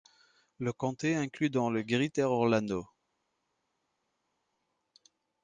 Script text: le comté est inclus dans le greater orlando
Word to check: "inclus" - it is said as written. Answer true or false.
true